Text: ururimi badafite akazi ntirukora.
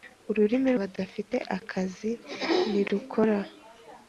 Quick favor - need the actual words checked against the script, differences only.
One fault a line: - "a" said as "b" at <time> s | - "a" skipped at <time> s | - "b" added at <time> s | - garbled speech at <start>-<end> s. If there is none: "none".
none